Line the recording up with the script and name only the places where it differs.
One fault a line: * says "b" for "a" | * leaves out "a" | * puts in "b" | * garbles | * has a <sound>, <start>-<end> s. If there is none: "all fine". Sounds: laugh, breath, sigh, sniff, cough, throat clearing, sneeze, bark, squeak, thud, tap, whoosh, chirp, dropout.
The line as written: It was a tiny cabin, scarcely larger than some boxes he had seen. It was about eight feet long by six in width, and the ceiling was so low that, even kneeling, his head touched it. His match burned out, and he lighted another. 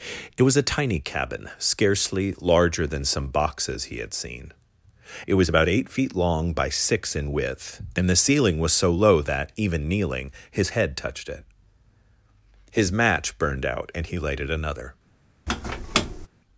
* has a squeak, 15.5-16.3 s